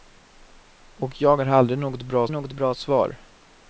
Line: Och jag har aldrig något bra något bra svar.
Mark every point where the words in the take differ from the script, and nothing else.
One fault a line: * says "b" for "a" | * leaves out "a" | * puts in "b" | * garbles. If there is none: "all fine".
all fine